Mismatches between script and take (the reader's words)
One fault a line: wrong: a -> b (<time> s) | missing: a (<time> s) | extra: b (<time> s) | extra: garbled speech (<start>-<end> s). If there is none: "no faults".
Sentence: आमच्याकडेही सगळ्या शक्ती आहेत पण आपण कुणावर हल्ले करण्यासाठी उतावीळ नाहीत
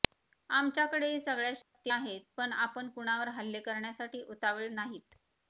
no faults